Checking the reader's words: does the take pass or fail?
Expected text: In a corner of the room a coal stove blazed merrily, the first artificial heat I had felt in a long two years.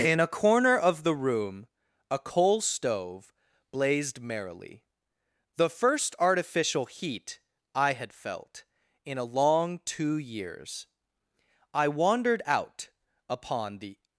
fail